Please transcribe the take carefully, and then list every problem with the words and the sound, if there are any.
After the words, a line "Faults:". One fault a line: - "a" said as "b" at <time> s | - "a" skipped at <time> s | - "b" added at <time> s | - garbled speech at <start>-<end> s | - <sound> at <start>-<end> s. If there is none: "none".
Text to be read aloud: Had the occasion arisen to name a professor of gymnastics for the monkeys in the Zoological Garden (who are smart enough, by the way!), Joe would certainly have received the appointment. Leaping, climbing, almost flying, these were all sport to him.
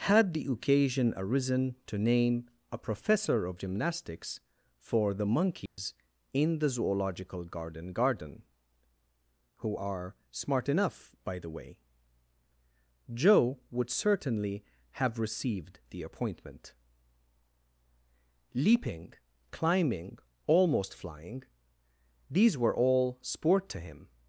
Had the occasion arisen to name a professor of gymnastics for the monkeys in the Zoological Garden Garden (who are smart enough, by the way!), Joe would certainly have received the appointment. Leaping, climbing, almost flying, these were all sport to him.
Faults:
- dropout at 5.7-5.8 s
- "Garden" added at 7.9 s